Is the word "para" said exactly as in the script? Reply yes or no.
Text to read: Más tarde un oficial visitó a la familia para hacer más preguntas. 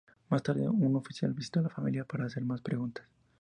yes